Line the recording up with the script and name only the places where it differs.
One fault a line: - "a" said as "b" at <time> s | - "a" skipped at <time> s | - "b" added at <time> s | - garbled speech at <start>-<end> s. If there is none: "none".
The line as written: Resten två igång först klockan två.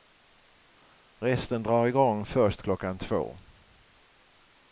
- "två" said as "drar" at 1.6 s